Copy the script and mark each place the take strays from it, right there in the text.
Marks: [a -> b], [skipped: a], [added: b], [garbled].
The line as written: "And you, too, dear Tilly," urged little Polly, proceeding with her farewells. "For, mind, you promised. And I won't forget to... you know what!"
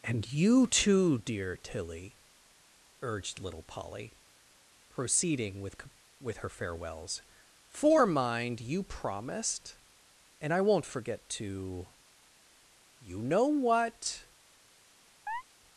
"And you, too, dear Tilly," urged little Polly, proceeding with [added: with] her farewells. "For, mind, you promised. And I won't forget to... you know what!"